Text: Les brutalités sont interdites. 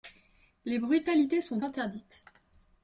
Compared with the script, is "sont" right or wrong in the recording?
right